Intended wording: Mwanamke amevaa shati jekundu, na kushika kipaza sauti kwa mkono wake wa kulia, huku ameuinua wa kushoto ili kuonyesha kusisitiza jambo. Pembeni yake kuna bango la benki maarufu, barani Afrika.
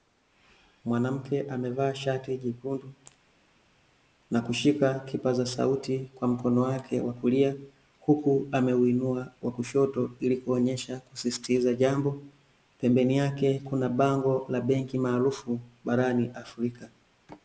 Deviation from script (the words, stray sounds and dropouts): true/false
false